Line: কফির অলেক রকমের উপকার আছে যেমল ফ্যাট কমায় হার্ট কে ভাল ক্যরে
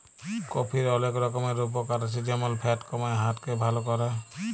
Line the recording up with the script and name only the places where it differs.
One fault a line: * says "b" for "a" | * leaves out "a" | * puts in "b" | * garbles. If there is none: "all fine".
all fine